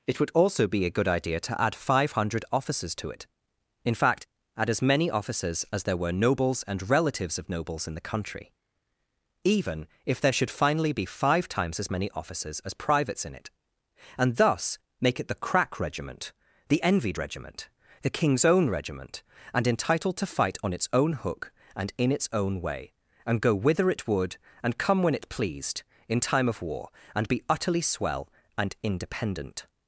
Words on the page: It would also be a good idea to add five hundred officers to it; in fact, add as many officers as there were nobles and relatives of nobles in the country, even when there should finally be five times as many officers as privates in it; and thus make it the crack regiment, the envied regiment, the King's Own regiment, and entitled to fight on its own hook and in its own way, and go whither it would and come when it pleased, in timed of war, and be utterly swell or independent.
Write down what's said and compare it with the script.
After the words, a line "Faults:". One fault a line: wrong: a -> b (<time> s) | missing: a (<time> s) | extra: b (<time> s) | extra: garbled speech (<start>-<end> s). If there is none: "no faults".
It would also be a good idea to add five hundred officers to it; in fact, add as many officers as there were nobles and relatives of nobles in the country, even if there should finally be five times as many officers as privates in it; and thus make it the crack regiment, the envied regiment, the King's Own regiment, and entitled to fight on its own hook and in its own way, and go whither it would and come when it pleased, in time of war, and be utterly swell and independent.
Faults:
wrong: when -> if (10.1 s)
wrong: timed -> time (26.2 s)
wrong: or -> and (28.6 s)